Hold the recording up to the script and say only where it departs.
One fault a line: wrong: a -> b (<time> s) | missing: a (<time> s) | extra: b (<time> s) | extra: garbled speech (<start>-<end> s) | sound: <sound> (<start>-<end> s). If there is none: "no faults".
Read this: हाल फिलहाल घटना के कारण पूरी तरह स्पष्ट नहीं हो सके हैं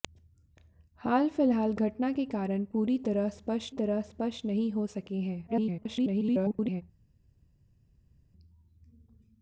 extra: तरह स्पष्ट (3.7 s)
extra: garbled speech (5.5-6.8 s)